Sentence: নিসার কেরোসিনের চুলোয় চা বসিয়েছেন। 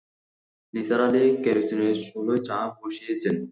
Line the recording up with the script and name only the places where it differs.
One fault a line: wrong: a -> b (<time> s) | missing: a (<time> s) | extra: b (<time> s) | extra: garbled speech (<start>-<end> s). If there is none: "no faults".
extra: আলি (1.1 s)